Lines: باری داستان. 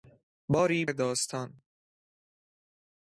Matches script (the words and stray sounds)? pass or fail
pass